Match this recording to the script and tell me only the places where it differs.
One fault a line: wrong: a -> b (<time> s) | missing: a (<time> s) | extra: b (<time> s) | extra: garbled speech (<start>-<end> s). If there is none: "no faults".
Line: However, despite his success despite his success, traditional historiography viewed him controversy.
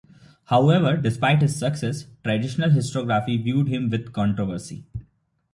missing: despite his success (2.1 s)
extra: with (3.9 s)